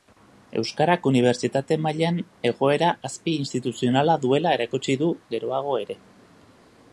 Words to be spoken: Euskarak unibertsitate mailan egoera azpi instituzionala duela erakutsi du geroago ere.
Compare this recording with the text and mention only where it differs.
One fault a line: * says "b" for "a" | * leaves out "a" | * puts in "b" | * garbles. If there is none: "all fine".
all fine